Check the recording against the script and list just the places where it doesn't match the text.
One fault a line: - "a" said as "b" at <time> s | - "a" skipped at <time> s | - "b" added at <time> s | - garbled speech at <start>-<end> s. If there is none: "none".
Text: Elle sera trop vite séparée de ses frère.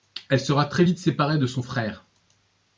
- "trop" said as "très" at 0.7 s
- "ses" said as "son" at 1.4 s